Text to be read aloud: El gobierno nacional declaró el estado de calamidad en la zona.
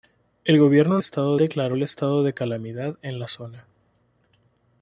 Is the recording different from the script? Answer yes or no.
yes